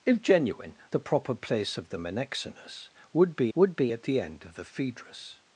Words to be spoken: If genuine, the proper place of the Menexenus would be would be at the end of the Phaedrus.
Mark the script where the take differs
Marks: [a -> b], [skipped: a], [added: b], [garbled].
If genuine, the proper place of the Menexenus would be would be at the end of the Phaedrus.